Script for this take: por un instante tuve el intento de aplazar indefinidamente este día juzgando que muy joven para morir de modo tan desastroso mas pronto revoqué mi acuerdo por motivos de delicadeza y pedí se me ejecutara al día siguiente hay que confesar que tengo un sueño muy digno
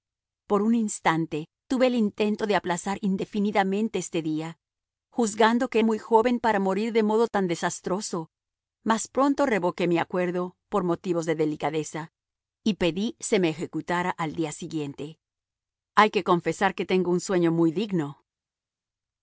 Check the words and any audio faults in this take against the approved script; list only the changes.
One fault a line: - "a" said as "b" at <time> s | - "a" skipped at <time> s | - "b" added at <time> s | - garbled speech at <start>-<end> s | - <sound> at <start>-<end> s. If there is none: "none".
none